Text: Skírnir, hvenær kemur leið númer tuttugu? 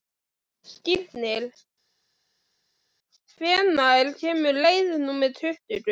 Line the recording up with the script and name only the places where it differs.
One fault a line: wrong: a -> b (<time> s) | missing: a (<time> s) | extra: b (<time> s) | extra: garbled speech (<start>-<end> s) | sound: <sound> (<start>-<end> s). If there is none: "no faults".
no faults